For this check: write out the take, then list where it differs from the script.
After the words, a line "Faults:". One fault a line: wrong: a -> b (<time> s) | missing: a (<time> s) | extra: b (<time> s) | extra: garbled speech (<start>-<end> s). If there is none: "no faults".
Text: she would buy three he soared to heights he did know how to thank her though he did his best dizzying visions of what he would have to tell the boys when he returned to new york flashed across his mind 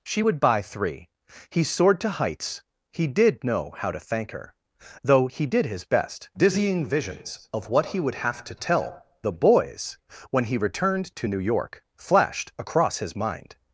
she would buy three he soared to heights he did know how to thank her though he did his best dizzying visions of what he would have to tell the boys when he returned to new york flashed across his mind
Faults:
no faults